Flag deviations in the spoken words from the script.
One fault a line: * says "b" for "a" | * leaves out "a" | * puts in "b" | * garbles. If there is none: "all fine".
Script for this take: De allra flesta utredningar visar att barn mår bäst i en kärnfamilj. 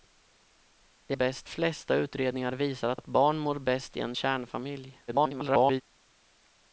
* says "bäst" for "allra"
* puts in "att"
* garbles